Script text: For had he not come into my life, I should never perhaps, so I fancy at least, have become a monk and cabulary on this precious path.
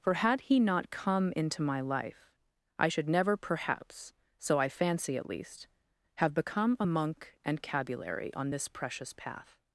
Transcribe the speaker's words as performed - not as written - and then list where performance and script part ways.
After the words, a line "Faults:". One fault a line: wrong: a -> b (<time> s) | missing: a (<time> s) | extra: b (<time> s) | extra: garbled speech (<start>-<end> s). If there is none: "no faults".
For had he not come into my life, I should never perhaps, so I fancy at least, have become a monk and cabulary on this precious path.
Faults:
no faults